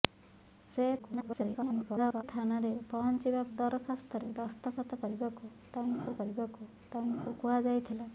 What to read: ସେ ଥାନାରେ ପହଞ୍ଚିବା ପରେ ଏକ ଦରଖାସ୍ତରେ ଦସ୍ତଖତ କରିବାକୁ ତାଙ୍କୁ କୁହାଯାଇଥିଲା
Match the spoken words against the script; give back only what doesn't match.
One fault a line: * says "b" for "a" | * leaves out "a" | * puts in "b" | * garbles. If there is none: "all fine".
* garbles
* says "ଦରଖାସ୍ତରେ ଦସ୍ତଖତ କରିବାକୁ ତାଙ୍କୁ" for "ପରେ ଏକ ଦରଖାସ୍ତରେ ଦସ୍ତଖତ"